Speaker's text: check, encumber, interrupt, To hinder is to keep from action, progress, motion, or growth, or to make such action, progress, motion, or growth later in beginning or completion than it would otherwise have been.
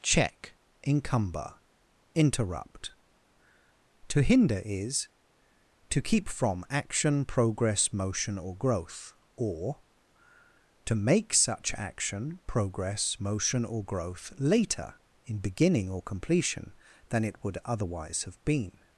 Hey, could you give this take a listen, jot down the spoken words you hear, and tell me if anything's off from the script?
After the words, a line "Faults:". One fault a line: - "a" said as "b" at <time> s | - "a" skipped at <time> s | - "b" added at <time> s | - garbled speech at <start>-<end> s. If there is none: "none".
check, encumber, interrupt, To hinder is to keep from action, progress, motion, or growth, or to make such action, progress, motion, or growth later in beginning or completion than it would otherwise have been.
Faults:
none